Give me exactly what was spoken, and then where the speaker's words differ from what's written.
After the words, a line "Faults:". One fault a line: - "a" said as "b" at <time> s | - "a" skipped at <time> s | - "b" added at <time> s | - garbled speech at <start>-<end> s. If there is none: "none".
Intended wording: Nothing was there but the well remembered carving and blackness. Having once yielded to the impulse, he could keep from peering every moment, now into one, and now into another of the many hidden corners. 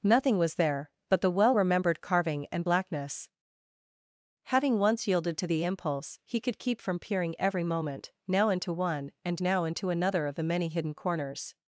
Nothing was there but the well remembered carving and blackness. Having once yielded to the impulse, he could keep from peering every moment, now into one, and now into another of the many hidden corners.
Faults:
none